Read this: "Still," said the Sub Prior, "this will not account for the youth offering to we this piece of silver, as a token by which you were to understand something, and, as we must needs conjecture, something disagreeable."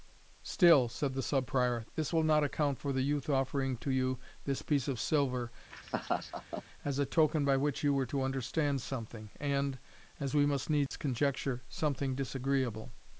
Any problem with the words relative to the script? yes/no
yes